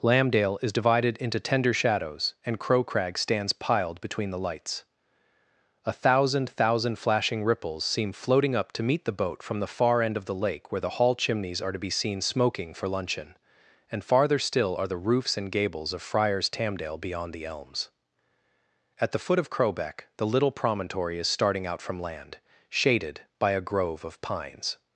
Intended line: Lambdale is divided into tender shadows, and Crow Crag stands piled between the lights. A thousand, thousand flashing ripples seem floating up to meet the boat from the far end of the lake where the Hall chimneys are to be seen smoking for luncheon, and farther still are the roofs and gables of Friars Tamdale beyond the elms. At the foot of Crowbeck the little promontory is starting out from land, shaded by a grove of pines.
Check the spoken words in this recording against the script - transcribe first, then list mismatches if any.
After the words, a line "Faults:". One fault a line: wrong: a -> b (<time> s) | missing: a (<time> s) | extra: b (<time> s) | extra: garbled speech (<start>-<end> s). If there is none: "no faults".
Lambdale is divided into tender shadows, and Crow Crag stands piled between the lights. A thousand, thousand flashing ripples seem floating up to meet the boat from the far end of the lake where the Hall chimneys are to be seen smoking for luncheon, and farther still are the roofs and gables of Friars Tamdale beyond the elms. At the foot of Crowbeck the little promontory is starting out from land, shaded by a grove of pines.
Faults:
no faults